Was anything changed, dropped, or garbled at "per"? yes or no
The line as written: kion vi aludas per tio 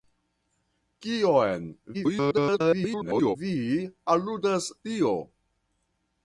yes